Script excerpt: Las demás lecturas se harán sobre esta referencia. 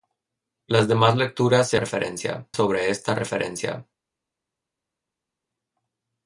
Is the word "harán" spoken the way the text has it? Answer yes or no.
no